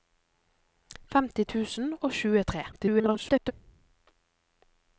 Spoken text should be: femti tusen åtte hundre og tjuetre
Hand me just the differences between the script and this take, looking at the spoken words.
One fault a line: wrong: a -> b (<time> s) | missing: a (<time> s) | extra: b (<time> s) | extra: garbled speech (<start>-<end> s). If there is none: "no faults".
missing: åtte hundre (1.9 s)
extra: garbled speech (2.7-3.5 s)